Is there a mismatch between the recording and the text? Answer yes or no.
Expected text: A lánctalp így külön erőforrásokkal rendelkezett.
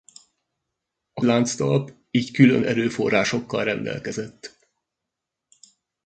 no